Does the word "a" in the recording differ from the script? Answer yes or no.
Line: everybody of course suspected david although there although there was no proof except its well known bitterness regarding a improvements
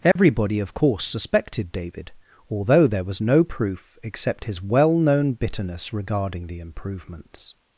yes